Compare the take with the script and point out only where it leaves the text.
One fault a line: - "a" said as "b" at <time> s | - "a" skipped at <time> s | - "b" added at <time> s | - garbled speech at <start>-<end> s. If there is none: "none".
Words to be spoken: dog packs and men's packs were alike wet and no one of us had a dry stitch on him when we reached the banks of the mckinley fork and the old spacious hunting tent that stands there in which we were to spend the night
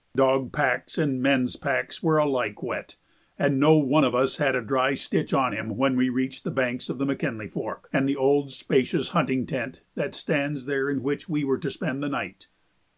none